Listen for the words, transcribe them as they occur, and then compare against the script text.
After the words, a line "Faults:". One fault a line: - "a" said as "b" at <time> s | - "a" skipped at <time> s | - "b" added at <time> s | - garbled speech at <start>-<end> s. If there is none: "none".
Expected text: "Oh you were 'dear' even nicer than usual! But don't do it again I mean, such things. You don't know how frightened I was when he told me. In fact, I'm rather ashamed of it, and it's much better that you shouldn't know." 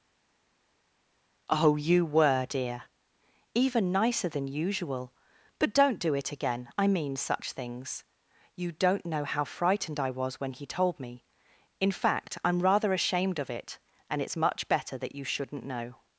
"Oh you were 'dear' even nicer than usual! But don't do it again I mean, such things. You don't know how frightened I was when he told me. In fact, I'm rather ashamed of it, and it's much better that you shouldn't know."
Faults:
none